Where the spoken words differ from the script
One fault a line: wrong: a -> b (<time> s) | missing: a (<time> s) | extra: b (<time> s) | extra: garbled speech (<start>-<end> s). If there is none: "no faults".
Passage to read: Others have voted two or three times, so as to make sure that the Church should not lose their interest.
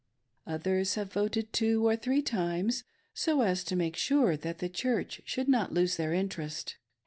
no faults